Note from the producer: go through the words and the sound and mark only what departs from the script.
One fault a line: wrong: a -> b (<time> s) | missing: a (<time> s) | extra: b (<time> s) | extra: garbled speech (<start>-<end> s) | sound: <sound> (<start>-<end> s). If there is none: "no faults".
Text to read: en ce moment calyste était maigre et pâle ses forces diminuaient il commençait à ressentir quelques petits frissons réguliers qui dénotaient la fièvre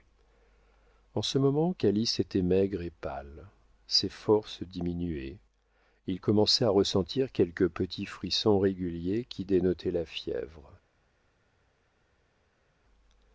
no faults